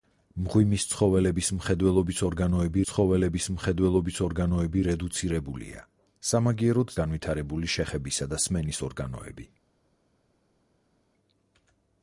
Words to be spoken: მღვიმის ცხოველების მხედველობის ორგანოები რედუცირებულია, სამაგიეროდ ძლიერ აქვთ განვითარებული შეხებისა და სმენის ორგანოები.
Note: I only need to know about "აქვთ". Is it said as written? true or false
false